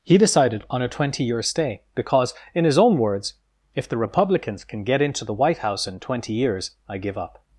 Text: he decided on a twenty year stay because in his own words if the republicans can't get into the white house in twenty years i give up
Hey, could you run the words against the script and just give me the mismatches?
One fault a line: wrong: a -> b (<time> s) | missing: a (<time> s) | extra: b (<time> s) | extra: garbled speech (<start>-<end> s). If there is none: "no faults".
wrong: can't -> can (4.6 s)